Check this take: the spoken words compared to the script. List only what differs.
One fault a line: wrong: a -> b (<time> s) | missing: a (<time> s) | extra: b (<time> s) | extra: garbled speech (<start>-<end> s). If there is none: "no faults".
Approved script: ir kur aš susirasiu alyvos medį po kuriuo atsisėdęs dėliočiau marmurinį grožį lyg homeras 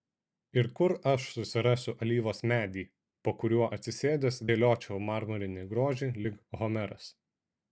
no faults